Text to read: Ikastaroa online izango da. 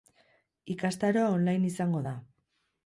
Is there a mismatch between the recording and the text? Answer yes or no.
no